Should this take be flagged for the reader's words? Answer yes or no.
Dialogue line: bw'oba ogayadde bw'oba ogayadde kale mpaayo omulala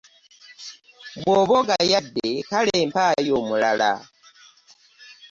yes